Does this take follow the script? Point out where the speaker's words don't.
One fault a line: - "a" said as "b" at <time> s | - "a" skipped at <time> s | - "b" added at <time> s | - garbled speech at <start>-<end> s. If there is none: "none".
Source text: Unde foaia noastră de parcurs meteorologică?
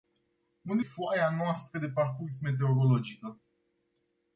none